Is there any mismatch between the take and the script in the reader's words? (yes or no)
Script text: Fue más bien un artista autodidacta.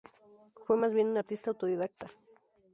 no